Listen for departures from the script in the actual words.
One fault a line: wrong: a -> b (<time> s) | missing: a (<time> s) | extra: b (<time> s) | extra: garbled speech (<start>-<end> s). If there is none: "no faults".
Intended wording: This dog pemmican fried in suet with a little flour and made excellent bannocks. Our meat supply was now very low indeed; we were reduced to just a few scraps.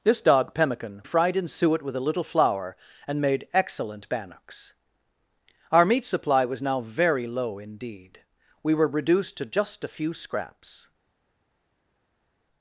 no faults